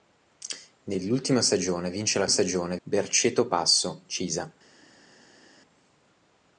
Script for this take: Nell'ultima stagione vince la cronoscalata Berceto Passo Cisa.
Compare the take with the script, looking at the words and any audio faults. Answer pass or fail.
fail